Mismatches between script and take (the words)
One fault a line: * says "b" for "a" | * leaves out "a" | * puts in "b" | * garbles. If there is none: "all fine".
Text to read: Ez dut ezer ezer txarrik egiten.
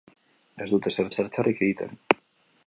all fine